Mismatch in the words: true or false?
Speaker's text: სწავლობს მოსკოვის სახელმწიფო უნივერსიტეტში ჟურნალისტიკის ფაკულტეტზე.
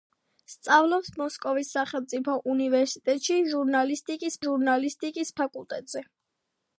true